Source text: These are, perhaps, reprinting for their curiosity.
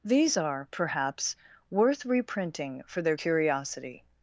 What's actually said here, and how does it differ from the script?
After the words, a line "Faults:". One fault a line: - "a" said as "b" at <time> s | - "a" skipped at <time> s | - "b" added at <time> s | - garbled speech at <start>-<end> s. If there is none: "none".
These are, perhaps, worth reprinting for their curiosity.
Faults:
- "worth" added at 1.7 s